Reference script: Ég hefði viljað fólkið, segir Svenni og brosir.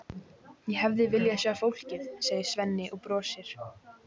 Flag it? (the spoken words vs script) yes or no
yes